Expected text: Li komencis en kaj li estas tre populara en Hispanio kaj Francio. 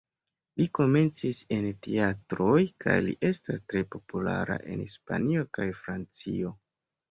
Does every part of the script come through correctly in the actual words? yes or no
no